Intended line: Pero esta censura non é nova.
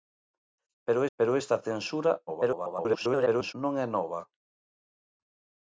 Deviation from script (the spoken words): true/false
true